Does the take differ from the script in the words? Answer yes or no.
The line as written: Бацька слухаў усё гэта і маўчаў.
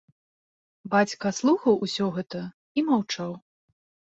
no